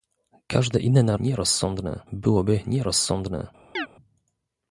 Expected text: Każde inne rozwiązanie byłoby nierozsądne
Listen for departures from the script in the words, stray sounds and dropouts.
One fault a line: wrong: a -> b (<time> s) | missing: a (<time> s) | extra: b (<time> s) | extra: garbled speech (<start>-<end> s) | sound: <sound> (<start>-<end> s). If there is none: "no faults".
wrong: rozwiązanie -> nierozsądne (1.2 s)
sound: chirp (3.8-3.9 s)